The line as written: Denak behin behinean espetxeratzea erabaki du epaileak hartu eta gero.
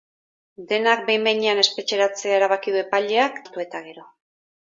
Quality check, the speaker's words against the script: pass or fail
pass